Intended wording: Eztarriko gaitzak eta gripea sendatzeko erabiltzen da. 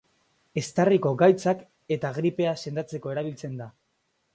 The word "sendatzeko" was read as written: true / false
true